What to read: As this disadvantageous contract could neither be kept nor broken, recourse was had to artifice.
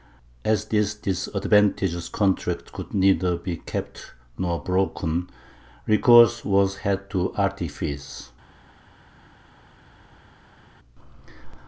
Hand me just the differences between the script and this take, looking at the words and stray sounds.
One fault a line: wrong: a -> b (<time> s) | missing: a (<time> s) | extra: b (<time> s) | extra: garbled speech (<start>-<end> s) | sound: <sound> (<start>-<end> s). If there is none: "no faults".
no faults